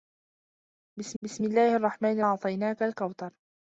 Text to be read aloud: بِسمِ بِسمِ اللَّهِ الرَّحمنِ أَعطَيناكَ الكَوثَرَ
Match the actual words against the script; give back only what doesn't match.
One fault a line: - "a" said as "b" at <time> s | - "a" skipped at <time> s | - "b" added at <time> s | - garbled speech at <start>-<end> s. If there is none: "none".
none